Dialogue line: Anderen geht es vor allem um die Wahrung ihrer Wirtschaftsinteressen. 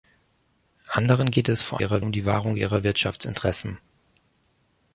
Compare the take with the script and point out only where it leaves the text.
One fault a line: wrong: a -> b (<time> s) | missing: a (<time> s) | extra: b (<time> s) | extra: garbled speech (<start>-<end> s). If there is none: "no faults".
wrong: allem -> ihrer (1.8 s)